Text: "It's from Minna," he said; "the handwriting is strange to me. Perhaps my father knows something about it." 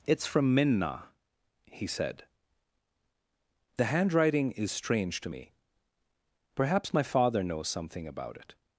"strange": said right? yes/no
yes